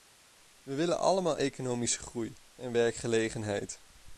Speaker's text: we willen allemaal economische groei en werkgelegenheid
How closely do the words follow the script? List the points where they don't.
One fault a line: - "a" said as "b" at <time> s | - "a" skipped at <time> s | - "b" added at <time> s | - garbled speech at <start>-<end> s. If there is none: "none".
none